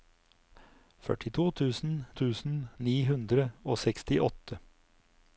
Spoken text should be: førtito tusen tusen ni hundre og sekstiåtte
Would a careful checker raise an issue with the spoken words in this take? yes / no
no